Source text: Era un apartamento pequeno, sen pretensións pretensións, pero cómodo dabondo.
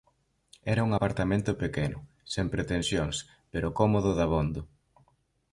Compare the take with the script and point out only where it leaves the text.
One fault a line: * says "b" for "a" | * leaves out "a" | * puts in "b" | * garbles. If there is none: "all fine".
* leaves out "pretensións"